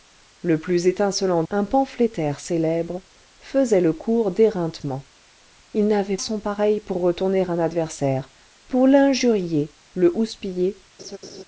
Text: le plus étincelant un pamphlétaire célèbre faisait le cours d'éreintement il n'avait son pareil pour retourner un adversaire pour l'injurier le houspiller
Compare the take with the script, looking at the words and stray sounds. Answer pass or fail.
fail